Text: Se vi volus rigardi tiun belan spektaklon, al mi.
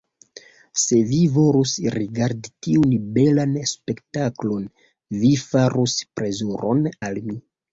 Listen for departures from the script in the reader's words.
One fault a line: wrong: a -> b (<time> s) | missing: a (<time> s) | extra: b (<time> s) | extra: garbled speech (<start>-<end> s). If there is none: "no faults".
extra: vi farus plezuron (5.3 s)